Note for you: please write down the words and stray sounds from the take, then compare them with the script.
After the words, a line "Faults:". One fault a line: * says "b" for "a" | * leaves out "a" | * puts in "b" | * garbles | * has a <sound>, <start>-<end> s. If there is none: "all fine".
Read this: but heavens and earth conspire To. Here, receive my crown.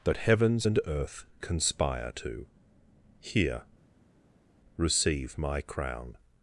but heavens and earth conspire To. Here, receive my crown.
Faults:
all fine